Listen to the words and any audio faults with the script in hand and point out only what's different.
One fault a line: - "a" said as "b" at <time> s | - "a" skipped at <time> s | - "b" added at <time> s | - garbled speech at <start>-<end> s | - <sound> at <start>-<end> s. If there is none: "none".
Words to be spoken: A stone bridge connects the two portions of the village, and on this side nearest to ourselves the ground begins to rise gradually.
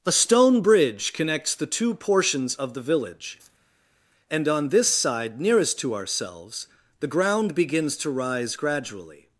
none